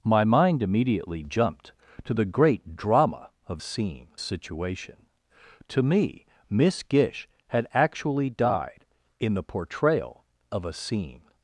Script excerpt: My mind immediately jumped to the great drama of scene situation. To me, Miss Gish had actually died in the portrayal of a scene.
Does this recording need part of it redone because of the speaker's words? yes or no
no